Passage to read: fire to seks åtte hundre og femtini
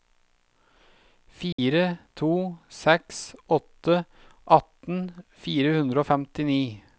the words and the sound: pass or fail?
fail